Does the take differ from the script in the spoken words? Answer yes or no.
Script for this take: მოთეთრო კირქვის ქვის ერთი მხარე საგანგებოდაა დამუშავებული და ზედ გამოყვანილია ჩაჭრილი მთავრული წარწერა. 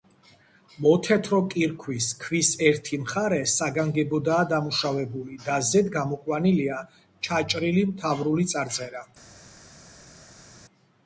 no